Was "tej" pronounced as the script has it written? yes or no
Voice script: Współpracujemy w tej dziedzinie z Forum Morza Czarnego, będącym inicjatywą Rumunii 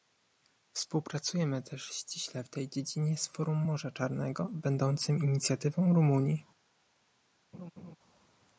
yes